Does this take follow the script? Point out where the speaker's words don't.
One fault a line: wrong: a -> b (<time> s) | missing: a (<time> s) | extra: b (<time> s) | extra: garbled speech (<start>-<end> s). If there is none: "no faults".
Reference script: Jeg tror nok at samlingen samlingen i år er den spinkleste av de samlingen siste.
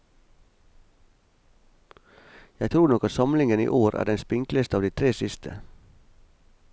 missing: samlingen (3.6 s)
wrong: samlingen -> tre (4.9 s)